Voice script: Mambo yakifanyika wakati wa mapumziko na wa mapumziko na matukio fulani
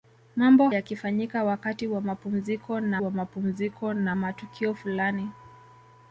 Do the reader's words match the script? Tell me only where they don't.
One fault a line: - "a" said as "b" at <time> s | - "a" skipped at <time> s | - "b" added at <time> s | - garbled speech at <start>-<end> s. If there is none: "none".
none